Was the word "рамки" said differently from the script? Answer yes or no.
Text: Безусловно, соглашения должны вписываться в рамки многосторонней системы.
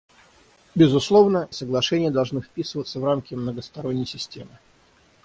no